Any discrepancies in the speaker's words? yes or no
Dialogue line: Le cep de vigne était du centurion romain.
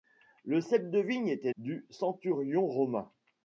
no